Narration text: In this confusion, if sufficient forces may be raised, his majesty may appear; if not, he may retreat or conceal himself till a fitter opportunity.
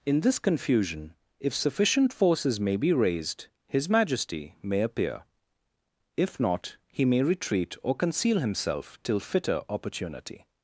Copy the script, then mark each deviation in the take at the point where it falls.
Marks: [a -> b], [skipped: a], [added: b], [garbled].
In this confusion, if sufficient forces may be raised, his majesty may appear; if not, he may retreat or conceal himself till [skipped: a] fitter opportunity.